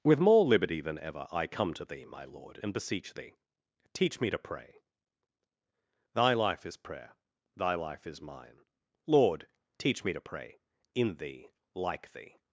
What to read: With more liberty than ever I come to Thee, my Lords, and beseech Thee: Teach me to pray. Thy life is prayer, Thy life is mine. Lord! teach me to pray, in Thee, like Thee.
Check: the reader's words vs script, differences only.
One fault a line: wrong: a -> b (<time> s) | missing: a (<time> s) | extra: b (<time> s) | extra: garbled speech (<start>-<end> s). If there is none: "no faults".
wrong: Lords -> Lord (2.2 s)